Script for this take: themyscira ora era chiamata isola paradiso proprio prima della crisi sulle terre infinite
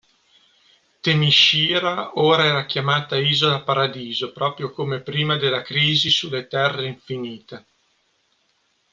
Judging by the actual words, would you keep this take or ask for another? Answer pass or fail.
fail